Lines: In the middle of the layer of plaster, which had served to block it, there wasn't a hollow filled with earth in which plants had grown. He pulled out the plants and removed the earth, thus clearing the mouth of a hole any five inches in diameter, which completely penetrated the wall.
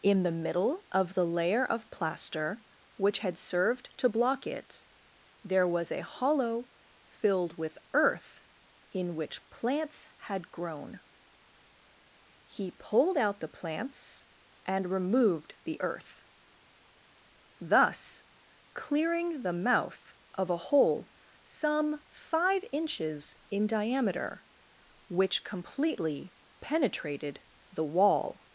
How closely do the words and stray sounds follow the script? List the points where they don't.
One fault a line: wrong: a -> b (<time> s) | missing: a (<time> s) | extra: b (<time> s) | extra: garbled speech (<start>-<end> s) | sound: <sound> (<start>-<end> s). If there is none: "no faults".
wrong: wasn't -> was (5.7 s)
wrong: any -> some (21.4 s)